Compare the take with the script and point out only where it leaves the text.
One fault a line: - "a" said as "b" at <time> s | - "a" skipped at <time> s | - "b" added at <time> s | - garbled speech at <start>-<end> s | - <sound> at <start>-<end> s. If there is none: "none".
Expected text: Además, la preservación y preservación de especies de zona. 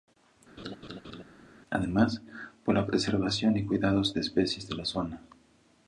- laugh at 0.6-1.2 s
- "por" added at 2.6 s
- "preservación" said as "cuidados" at 3.6 s
- "la" added at 4.8 s